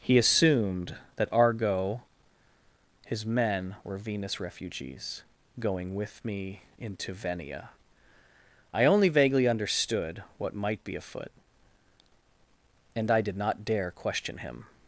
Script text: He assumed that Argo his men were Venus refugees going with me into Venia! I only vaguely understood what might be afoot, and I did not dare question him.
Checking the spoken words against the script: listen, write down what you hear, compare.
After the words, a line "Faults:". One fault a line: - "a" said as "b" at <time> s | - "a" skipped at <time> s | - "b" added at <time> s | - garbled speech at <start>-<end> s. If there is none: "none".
He assumed that Argo his men were Venus refugees going with me into Venia! I only vaguely understood what might be afoot, and I did not dare question him.
Faults:
none